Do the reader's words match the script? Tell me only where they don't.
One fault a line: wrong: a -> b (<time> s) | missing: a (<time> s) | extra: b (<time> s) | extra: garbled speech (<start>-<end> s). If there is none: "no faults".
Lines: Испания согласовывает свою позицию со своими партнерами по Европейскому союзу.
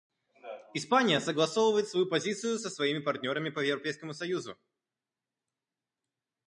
no faults